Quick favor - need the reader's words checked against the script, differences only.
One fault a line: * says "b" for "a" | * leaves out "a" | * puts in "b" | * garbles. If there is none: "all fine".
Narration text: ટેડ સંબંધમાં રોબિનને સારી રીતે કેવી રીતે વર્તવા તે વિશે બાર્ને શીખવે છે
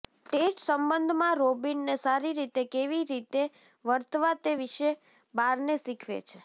all fine